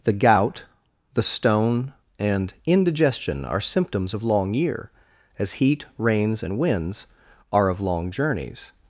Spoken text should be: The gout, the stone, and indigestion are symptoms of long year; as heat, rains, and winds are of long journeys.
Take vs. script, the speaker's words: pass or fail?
pass